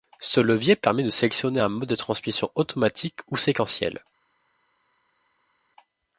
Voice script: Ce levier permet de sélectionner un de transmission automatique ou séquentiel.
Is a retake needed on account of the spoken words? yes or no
yes